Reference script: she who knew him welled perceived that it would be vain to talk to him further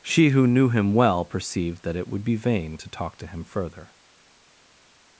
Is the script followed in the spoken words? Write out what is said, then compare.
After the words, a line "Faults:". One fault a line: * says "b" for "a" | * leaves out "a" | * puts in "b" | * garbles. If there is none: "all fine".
she who knew him well perceived that it would be vain to talk to him further
Faults:
* says "well" for "welled"